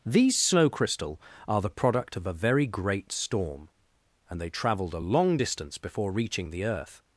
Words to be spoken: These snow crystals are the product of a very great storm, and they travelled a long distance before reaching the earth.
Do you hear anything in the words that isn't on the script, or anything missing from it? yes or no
yes